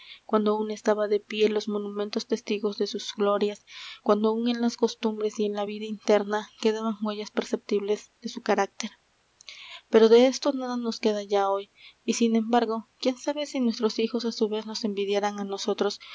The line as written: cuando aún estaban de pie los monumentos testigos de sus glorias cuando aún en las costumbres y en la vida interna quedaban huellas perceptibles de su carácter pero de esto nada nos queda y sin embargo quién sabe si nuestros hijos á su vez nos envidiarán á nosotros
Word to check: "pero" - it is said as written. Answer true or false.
true